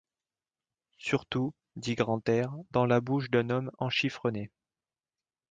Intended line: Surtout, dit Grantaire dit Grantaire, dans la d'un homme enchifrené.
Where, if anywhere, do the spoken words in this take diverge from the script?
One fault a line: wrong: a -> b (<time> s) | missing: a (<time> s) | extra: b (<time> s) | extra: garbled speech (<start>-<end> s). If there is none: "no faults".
missing: dit Grantaire (2.5 s)
extra: bouche (3.0 s)